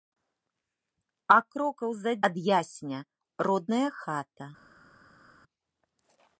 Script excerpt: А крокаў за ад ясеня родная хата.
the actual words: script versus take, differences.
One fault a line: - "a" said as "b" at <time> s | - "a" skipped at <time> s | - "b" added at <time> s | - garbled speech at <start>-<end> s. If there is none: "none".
none